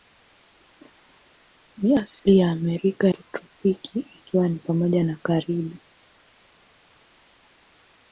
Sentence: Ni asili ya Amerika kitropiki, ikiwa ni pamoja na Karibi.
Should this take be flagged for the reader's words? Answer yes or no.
no